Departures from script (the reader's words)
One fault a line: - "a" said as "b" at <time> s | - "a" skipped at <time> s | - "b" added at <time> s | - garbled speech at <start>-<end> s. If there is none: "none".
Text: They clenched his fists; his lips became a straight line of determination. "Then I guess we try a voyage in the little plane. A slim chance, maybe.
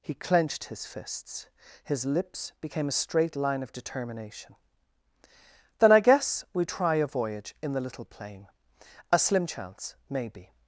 - "They" said as "He" at 0.0 s